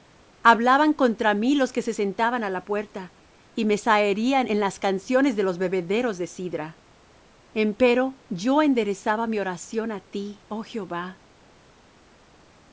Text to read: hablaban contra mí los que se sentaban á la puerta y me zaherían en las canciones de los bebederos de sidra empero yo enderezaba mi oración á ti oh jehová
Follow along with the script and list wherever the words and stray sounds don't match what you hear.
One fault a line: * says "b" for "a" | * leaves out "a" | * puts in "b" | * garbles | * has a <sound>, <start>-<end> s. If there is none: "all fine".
all fine